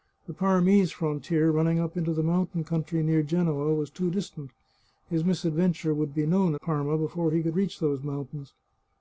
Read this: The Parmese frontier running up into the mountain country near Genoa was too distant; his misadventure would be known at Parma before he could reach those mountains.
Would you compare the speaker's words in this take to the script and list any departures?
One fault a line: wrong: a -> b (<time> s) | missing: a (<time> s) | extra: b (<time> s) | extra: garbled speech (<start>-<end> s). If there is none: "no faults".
missing: at (6.5 s)